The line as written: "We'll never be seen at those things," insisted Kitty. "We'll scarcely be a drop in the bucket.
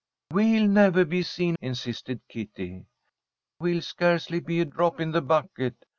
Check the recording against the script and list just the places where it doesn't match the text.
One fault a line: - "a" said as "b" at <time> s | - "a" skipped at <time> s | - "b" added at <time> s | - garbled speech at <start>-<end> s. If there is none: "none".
- "at those things" skipped at 1.6 s